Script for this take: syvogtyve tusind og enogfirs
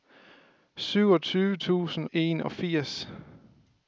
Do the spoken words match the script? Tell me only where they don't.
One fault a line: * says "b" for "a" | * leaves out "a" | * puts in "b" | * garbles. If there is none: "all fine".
* leaves out "og"